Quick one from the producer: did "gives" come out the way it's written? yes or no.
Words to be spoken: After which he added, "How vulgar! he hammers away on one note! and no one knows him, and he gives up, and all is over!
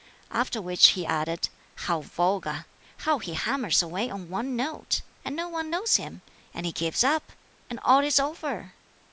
yes